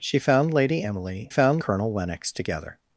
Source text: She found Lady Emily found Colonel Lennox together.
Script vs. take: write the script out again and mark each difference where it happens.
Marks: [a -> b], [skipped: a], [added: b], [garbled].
She found Lady Emily found Colonel Lennox together.